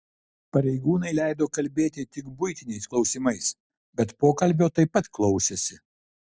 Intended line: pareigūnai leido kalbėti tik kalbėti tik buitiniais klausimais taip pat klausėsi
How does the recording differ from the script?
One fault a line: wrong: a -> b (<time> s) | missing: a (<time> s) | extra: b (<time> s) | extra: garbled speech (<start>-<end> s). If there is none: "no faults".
wrong: kalbėti tik buitiniais klausimais -> buitiniais klausimais bet pokalbio (2.4 s)